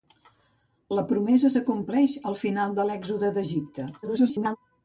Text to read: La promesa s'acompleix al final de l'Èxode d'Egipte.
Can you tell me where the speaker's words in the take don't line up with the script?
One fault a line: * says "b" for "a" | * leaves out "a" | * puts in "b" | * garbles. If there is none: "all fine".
* garbles